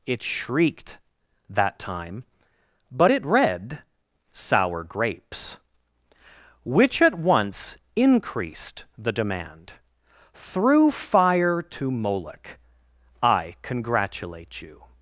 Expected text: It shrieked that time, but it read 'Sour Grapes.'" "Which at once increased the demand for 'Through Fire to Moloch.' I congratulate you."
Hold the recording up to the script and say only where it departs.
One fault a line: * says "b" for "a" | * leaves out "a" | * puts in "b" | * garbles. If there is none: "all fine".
* leaves out "for"